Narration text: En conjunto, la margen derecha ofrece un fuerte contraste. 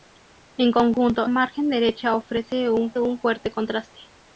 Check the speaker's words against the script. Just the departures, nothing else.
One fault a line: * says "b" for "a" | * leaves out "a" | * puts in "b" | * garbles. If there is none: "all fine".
* leaves out "la"
* puts in "un"